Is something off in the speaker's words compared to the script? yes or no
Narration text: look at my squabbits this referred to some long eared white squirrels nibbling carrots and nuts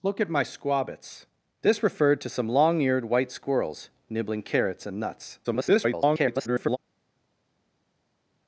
yes